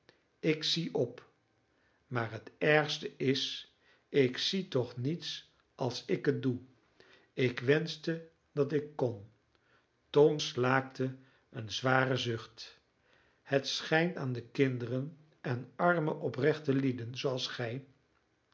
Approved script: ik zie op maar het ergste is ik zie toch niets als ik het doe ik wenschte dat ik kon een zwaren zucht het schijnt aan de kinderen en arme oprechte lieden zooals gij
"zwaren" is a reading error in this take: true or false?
false